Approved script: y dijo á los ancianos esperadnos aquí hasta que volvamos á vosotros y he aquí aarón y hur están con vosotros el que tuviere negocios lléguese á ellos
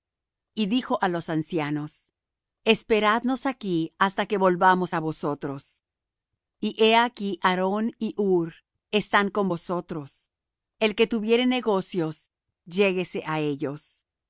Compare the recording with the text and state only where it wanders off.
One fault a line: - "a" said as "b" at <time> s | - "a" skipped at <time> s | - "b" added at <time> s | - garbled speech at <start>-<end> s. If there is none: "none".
none